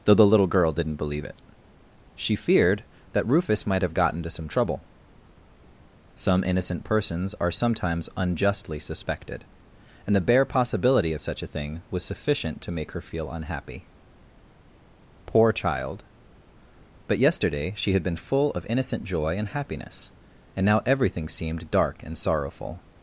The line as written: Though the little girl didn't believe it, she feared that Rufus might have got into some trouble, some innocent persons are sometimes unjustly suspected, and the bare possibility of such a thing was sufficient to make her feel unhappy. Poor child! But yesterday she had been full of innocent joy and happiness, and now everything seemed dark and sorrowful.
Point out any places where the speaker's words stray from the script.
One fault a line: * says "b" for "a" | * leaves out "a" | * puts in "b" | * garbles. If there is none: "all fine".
* says "gotten" for "got"